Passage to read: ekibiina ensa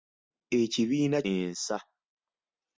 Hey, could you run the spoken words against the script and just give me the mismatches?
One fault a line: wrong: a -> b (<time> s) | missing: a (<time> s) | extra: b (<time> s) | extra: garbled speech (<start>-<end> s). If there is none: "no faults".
no faults